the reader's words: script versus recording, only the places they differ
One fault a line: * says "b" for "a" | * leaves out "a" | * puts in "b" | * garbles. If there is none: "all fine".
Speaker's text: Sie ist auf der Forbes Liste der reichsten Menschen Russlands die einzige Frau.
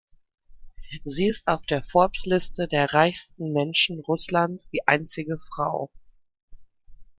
all fine